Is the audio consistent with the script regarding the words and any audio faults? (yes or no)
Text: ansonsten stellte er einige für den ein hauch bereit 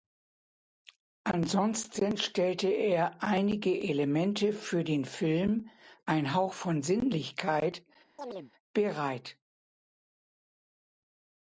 no